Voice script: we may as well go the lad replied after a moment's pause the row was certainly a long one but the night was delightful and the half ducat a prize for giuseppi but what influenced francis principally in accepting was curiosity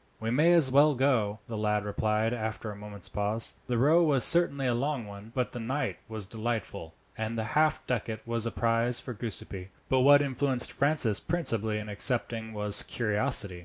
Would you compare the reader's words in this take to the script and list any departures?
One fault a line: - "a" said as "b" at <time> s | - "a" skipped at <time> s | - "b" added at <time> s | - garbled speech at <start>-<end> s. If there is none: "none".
- "was" added at 8.3 s